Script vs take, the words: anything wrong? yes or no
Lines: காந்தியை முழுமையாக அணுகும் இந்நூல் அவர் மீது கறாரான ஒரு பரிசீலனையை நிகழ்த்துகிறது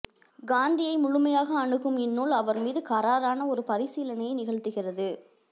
no